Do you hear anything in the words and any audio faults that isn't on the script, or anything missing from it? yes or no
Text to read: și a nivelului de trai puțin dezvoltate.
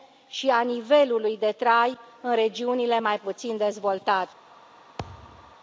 yes